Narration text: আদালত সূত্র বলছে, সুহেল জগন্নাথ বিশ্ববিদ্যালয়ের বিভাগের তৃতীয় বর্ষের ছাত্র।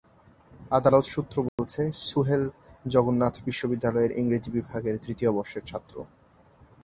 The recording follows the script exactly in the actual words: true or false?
false